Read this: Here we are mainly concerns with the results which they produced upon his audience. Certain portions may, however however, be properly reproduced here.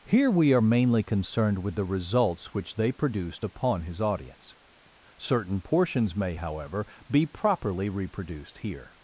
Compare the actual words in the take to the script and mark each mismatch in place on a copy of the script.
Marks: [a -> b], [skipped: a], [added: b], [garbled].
Here we are mainly [concerns -> concerned] with the results which they produced upon his audience. Certain portions may, however [skipped: however,] be properly reproduced here.